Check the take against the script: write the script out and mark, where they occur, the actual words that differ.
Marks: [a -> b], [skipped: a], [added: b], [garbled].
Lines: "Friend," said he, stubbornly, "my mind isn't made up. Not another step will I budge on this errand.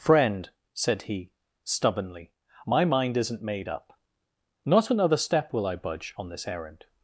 "Friend," said he, stubbornly, "my mind isn't made up. Not another step will I budge on this errand.